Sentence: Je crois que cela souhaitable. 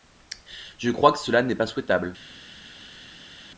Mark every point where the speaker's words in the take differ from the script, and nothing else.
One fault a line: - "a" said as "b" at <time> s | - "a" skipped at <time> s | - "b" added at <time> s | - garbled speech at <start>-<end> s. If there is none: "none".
- "n'est pas" added at 1.4 s